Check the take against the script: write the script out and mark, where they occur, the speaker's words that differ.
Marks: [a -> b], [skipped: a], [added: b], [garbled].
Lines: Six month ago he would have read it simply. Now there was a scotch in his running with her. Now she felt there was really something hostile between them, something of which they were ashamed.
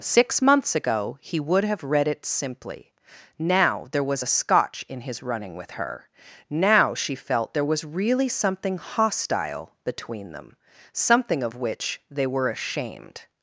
Six [month -> months] ago he would have read it simply. Now there was a scotch in his running with her. Now she felt there was really something hostile between them, something of which they were ashamed.